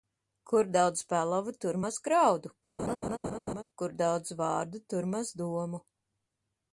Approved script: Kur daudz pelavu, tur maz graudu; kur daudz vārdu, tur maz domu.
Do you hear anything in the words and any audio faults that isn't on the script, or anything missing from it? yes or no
yes